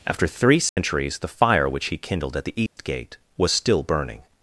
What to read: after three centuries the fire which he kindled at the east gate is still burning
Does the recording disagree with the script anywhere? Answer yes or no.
yes